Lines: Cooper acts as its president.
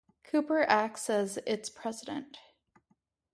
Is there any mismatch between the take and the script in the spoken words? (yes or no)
no